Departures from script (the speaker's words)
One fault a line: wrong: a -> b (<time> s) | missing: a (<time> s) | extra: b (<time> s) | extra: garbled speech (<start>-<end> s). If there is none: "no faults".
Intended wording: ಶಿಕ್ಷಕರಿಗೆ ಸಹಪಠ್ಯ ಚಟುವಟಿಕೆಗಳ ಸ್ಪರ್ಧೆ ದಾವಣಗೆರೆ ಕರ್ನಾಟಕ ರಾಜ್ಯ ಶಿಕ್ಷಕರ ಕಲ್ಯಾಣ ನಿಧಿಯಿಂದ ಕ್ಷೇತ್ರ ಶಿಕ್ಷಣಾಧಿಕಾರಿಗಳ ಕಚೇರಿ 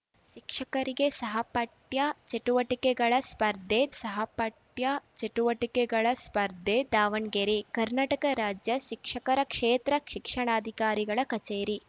extra: ಸಹಪಠ್ಯ ಚಟುವಟಿಕೆಗಳ ಸ್ಪರ್ಧೆ (4.0 s)
missing: ಕಲ್ಯಾಣ ನಿಧಿಯಿಂದ (9.4 s)